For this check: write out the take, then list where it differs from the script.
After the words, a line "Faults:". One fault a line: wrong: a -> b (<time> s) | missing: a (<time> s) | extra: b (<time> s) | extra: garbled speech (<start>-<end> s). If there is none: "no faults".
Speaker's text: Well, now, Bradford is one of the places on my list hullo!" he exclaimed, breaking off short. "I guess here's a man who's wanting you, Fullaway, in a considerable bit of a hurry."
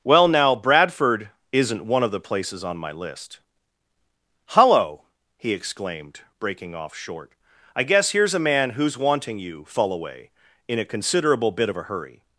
Well, now, Bradford isn't one of the places on my list hullo!" he exclaimed, breaking off short. "I guess here's a man who's wanting you, Fullaway, in a considerable bit of a hurry."
Faults:
wrong: is -> isn't (1.5 s)